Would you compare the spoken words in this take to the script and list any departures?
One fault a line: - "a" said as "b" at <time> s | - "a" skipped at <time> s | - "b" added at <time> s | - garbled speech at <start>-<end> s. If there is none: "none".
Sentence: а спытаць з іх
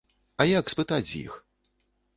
- "як" added at 0.5 s